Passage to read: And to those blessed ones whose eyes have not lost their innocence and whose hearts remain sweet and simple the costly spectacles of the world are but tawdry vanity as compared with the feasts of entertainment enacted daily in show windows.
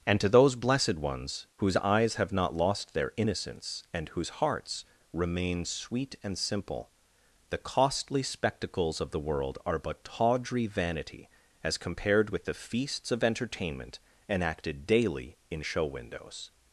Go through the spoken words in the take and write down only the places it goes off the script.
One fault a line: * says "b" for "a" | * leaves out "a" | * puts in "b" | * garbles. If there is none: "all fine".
all fine